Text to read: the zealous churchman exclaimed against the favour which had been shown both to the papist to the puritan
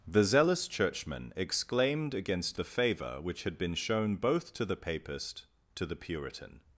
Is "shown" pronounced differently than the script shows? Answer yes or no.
no